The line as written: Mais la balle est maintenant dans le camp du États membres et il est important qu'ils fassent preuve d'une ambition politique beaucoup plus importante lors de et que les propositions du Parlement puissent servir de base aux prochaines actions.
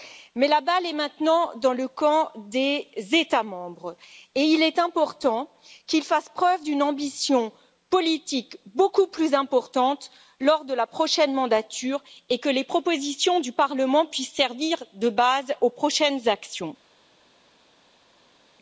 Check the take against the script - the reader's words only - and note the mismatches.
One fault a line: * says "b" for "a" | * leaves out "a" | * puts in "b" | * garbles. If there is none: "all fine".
* says "des" for "du"
* puts in "la prochaine mandature"